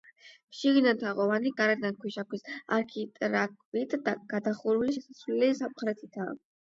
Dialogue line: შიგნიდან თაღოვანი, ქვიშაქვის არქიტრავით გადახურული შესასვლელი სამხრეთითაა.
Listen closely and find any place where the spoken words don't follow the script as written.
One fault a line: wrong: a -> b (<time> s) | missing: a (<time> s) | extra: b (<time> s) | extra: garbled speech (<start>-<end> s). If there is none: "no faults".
extra: გარედან (1.6 s)